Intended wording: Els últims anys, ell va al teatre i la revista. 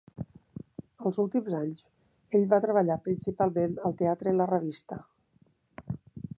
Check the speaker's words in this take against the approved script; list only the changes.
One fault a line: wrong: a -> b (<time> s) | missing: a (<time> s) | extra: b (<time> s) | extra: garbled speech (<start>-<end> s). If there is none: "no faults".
extra: treballar principalment (2.6 s)